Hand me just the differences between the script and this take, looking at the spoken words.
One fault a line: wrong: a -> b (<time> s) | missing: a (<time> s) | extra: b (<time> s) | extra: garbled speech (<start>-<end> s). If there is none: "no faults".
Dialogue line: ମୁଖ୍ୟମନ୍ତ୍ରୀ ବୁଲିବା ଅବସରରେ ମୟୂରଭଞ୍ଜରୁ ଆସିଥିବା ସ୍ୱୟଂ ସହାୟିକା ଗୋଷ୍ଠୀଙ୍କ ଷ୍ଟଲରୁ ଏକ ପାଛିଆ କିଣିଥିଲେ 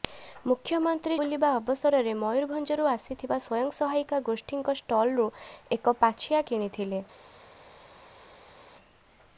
no faults